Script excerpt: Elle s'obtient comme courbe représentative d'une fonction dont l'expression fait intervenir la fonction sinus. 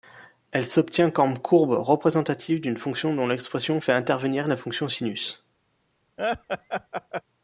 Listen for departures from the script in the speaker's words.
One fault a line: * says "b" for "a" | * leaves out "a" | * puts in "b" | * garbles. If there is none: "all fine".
all fine